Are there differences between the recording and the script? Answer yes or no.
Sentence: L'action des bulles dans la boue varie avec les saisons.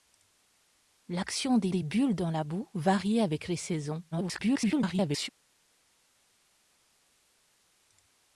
yes